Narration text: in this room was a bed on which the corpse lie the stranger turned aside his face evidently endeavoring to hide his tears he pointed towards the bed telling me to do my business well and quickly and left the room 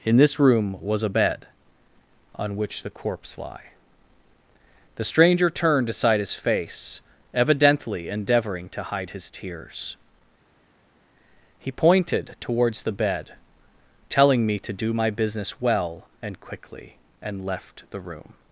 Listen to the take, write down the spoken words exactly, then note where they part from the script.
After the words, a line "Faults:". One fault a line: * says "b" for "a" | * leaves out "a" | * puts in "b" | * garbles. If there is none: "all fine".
in this room was a bed on which the corpse lie the stranger turned aside his face evidently endeavoring to hide his tears he pointed towards the bed telling me to do my business well and quickly and left the room
Faults:
all fine